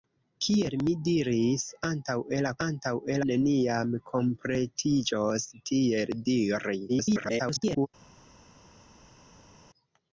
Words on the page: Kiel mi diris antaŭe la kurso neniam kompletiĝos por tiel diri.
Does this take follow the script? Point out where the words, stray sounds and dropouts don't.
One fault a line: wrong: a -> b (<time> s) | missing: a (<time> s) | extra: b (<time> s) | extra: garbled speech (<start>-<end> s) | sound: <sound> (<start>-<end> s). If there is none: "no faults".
wrong: kurso -> antaŭe (2.7 s)
missing: por (5.5 s)
extra: garbled speech (6.9-7.9 s)